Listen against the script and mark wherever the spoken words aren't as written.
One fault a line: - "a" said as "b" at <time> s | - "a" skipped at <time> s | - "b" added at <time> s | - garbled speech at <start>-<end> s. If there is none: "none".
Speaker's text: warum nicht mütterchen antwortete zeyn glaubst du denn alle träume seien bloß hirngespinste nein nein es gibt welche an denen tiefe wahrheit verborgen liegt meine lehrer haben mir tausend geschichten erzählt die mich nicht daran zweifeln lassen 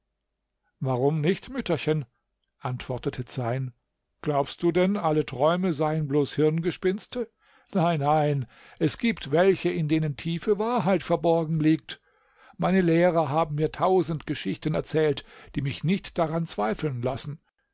- "an" said as "in" at 9.7 s